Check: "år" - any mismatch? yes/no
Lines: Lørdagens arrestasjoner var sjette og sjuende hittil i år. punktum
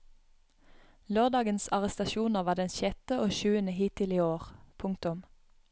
no